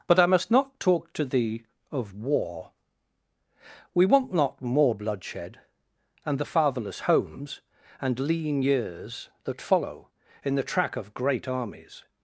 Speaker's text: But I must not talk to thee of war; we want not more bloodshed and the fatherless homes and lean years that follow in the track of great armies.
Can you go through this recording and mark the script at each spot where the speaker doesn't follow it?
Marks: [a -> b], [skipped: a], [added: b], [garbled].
But I must not talk to thee of war; we want not more bloodshed and the fatherless homes and lean years that follow in the track of great armies.